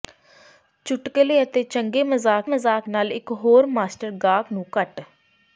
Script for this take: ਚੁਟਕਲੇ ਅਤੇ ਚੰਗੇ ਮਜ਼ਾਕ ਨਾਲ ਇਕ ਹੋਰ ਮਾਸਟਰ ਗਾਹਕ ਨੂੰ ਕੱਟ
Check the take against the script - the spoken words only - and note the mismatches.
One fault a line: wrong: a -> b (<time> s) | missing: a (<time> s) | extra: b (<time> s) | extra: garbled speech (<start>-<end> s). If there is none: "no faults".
extra: ਮਜ਼ਾਕ (2.5 s)